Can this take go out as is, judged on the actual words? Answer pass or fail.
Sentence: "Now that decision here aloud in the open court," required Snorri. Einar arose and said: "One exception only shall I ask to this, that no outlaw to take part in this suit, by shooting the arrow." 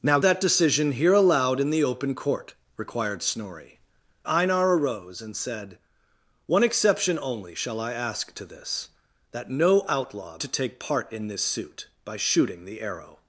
pass